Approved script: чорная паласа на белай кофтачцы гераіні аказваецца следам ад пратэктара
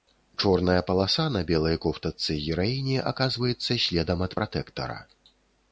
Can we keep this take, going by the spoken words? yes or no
yes